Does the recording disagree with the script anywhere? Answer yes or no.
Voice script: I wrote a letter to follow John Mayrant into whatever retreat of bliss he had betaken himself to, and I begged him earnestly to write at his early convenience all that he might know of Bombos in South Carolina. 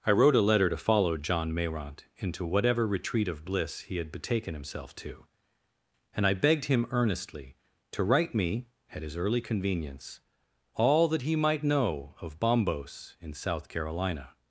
yes